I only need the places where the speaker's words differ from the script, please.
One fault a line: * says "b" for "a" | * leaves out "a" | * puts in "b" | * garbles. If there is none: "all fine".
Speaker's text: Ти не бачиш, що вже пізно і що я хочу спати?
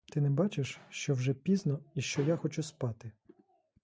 all fine